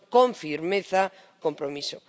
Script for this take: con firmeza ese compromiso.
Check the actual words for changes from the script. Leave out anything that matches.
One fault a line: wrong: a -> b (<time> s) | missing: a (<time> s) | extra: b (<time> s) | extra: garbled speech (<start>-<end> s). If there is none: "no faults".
missing: ese (1.1 s)